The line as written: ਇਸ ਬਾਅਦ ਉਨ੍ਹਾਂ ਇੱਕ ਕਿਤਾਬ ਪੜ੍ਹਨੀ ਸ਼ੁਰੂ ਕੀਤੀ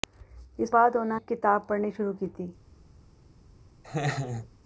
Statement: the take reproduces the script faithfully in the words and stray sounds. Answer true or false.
false